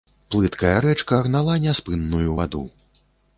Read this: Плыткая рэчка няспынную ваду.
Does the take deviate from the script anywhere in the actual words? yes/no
yes